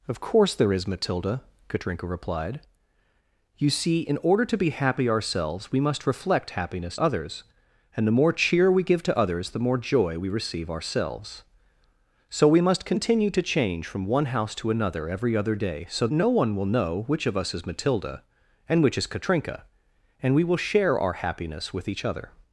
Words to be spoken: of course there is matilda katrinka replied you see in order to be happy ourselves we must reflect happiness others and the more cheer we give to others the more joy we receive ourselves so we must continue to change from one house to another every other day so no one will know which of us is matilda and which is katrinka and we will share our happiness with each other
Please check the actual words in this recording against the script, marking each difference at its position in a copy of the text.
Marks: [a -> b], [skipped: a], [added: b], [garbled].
of course there is matilda katrinka replied you see in order to be happy ourselves we must reflect happiness others and the more cheer we give to others the more joy we receive ourselves so we must continue to change from one house to another every other day so no one will know which of us is matilda and which is katrinka and we will share our happiness with each other